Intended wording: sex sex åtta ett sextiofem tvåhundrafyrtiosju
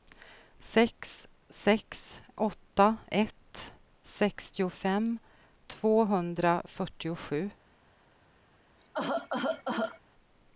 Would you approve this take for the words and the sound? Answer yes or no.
no